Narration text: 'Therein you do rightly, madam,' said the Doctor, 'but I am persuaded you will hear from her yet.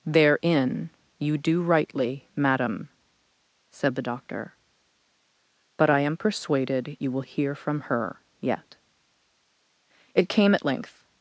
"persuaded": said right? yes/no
yes